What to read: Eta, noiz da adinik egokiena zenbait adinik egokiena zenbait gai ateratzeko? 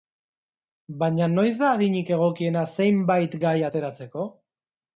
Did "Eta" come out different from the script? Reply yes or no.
yes